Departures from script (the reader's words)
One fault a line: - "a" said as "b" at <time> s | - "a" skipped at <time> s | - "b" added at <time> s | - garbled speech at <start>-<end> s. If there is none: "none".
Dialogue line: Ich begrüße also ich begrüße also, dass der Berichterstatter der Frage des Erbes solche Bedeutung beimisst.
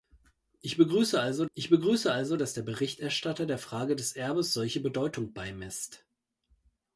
none